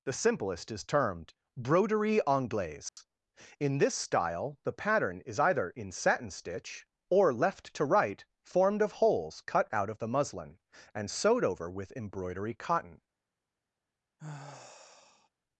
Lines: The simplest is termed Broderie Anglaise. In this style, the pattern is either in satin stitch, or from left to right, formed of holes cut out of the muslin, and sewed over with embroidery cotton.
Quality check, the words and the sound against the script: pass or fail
fail